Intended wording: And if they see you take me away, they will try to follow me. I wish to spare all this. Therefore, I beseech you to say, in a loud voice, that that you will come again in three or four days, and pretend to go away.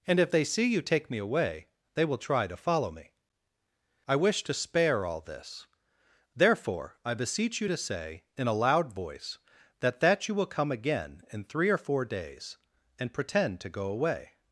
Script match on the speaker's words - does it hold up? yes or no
yes